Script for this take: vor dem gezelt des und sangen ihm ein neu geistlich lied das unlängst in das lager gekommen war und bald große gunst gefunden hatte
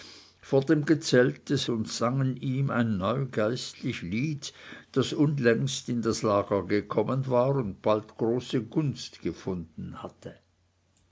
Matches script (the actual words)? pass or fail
pass